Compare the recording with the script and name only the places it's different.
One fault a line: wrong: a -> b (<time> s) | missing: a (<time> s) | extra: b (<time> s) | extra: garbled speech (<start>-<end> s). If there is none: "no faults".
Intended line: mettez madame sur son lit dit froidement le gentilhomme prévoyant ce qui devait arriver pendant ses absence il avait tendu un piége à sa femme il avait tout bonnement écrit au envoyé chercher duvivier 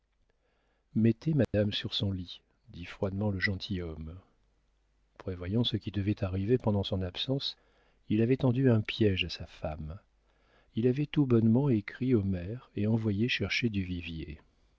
wrong: ses -> son (6.8 s)
extra: maire et (12.2 s)